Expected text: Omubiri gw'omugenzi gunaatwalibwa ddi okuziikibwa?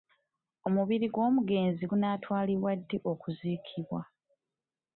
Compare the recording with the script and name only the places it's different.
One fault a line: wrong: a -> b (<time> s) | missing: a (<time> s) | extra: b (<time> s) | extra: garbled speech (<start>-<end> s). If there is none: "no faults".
no faults